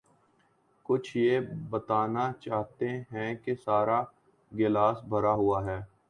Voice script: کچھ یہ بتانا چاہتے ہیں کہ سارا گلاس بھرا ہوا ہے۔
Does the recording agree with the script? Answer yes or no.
yes